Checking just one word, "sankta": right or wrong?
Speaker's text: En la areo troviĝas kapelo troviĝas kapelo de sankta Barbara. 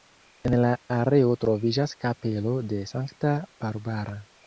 right